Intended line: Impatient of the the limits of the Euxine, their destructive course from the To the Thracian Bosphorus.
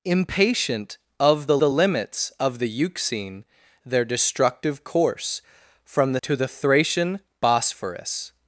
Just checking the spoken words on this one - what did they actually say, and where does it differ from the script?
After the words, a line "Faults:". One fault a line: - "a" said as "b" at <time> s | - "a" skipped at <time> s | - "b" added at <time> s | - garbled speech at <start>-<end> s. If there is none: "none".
Impatient of the the limits of the Euxine, their destructive course from the To the Thracian Bosphorus.
Faults:
none